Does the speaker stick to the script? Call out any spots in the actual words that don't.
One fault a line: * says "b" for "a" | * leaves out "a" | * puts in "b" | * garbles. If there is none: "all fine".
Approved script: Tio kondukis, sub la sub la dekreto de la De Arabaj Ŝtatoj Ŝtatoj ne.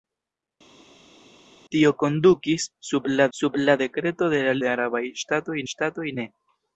all fine